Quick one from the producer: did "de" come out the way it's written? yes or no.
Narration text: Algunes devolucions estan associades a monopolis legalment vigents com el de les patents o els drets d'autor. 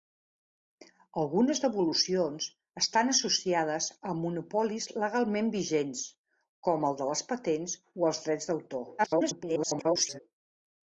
yes